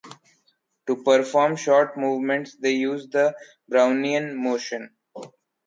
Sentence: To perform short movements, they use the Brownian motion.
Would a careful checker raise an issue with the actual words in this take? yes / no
no